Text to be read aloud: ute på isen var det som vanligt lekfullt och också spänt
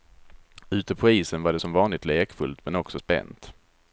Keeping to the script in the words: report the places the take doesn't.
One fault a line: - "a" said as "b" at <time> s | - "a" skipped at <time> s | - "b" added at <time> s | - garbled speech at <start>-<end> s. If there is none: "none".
- "och" said as "men" at 2.6 s